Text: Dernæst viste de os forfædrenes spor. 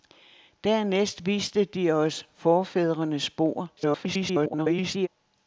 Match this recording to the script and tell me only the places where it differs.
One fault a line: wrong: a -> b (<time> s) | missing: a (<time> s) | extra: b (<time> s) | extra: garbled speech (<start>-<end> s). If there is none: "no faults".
extra: garbled speech (3.8-5.1 s)